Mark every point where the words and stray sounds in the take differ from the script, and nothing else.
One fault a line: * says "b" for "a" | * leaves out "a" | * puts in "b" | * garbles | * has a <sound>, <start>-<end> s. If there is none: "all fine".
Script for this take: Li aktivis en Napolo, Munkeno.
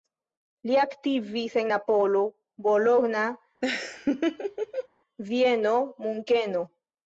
* puts in "Bologna Vieno"
* has a laugh, 3.6-4.9 s